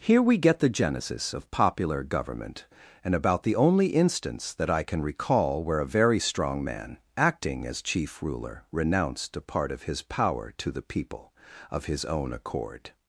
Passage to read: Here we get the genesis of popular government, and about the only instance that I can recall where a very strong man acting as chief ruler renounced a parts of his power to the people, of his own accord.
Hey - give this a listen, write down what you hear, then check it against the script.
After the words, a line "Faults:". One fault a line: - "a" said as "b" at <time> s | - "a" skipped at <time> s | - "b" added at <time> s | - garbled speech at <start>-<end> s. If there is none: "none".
Here we get the genesis of popular government, and about the only instance that I can recall where a very strong man acting as chief ruler renounced a part of his power to the people, of his own accord.
Faults:
- "parts" said as "part" at 9.4 s